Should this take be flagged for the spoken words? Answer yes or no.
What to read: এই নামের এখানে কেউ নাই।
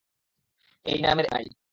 yes